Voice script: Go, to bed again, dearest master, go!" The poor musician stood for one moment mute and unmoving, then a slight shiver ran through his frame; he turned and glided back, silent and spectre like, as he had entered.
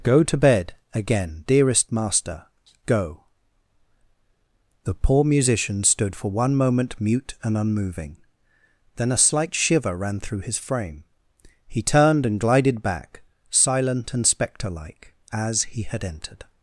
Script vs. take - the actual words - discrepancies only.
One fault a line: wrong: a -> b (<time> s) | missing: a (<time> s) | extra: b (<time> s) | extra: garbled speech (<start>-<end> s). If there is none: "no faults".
no faults